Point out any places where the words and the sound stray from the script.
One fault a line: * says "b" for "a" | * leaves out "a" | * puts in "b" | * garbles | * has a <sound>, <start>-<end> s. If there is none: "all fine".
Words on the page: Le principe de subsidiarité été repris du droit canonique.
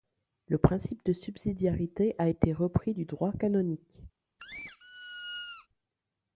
* puts in "a"
* has a squeak, 4.4-5.7 s